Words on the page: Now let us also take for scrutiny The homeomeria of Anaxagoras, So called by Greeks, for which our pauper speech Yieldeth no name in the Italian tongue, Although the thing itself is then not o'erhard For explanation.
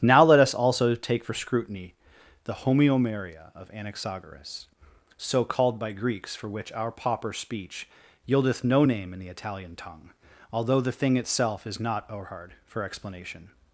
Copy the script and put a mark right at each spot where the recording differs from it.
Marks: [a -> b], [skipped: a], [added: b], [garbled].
Now let us also take for scrutiny The homeomeria of Anaxagoras, So called by Greeks, for which our pauper speech Yieldeth no name in the Italian tongue, Although the thing itself is [skipped: then] not o'erhard For explanation.